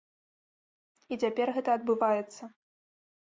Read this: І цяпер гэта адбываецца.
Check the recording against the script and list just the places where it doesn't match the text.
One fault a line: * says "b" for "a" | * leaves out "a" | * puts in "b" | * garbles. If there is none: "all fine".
all fine